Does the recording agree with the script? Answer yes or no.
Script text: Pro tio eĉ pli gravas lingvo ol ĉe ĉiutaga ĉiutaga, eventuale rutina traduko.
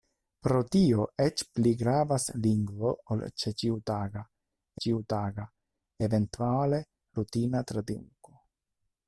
yes